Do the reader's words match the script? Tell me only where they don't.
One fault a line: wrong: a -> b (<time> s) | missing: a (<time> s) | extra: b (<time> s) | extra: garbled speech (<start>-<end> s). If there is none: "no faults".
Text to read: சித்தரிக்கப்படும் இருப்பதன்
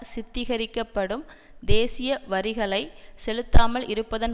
extra: தேசிய வரிகளை செலுத்தாமல் (1.6 s)